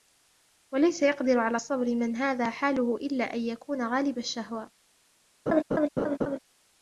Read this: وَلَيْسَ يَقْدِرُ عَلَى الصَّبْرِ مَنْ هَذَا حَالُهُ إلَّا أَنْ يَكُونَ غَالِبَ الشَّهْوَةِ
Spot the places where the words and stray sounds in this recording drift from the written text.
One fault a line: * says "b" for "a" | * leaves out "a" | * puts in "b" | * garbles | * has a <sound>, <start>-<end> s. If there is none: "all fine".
* has a laugh, 5.5-6.4 s